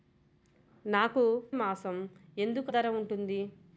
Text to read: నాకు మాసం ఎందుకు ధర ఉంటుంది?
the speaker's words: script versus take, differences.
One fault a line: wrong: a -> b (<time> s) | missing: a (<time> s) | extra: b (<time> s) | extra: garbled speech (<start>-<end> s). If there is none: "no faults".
no faults